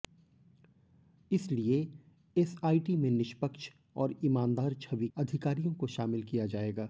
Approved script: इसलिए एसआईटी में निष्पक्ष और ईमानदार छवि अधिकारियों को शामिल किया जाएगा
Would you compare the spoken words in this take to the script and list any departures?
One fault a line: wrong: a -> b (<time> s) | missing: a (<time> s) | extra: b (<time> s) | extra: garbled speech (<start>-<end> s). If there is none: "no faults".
no faults